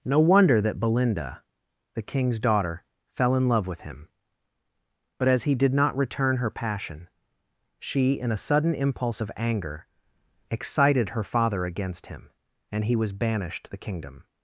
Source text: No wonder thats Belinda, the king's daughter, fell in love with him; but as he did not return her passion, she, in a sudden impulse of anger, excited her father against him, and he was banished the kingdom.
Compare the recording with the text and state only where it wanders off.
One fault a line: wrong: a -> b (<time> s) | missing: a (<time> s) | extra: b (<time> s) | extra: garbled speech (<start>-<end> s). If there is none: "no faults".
wrong: thats -> that (0.6 s)